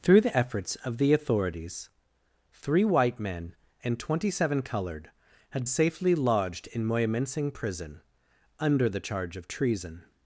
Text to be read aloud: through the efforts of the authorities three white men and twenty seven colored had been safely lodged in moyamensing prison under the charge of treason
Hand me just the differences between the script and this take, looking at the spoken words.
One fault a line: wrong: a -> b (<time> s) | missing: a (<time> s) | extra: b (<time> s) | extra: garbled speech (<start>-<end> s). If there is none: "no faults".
missing: been (5.7 s)